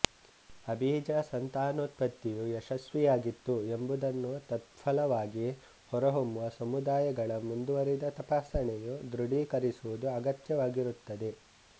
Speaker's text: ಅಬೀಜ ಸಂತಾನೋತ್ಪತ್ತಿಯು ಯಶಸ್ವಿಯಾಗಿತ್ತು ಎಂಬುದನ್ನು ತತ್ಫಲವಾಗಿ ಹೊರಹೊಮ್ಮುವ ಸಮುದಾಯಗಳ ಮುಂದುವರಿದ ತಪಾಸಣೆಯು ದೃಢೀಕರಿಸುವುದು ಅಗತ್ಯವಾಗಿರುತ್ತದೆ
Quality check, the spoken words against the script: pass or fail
pass